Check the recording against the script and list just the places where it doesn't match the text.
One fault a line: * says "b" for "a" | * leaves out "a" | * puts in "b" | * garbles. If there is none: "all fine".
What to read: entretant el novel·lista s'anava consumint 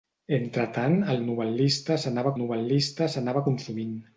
* puts in "novel·lista s'anava"